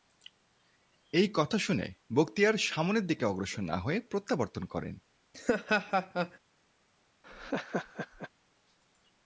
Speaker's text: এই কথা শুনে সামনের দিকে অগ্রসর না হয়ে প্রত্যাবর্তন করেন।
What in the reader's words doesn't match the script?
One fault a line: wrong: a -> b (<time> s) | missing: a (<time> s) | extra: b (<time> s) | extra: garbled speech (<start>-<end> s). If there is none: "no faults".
extra: বখতিয়ার (2.1 s)